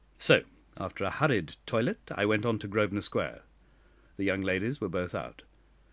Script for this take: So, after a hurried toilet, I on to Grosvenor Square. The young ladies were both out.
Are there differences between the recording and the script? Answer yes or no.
yes